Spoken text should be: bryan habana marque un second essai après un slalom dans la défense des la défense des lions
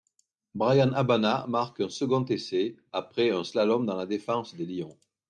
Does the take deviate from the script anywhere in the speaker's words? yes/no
yes